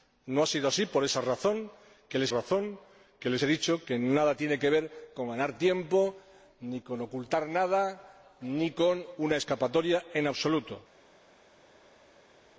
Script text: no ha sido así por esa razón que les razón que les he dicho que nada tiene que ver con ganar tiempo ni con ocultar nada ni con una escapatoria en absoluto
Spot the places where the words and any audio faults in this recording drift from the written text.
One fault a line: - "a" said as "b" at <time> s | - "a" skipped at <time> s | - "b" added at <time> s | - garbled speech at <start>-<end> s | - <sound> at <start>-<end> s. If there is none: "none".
none